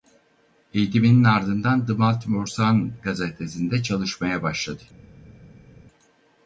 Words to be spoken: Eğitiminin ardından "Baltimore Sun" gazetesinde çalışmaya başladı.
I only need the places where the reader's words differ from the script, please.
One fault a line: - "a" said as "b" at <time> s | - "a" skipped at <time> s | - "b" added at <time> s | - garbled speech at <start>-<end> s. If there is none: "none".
- "The" added at 1.9 s